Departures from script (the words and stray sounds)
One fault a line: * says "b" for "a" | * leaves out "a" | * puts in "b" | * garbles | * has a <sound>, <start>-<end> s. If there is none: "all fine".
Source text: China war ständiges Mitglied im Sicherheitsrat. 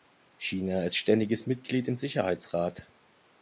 * says "ist" for "war"